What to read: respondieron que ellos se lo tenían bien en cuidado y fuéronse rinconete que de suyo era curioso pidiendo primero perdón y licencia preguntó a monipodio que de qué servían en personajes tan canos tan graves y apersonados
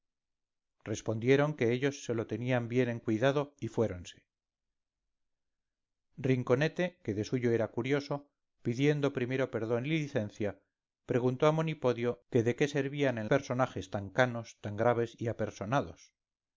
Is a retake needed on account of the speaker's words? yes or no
no